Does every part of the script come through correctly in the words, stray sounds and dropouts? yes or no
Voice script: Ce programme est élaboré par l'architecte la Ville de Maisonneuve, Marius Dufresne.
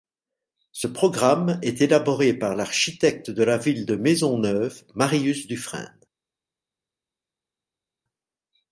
no